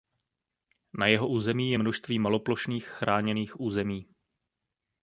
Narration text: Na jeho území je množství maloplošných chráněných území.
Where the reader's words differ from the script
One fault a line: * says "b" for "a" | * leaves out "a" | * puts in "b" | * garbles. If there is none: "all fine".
all fine